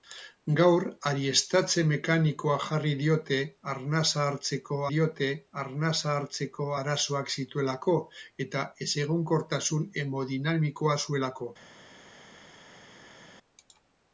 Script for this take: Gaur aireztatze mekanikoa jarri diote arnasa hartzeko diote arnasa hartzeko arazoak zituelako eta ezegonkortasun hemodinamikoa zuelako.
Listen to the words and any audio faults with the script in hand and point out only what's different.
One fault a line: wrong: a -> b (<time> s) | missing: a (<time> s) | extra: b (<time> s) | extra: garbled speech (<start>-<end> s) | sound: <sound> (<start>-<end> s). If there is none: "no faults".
no faults